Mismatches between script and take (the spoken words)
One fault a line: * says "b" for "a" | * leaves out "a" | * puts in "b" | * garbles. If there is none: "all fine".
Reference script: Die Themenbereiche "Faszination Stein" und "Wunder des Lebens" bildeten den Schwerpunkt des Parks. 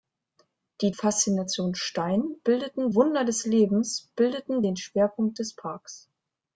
* leaves out "Themenbereiche"
* says "bildeten" for "und"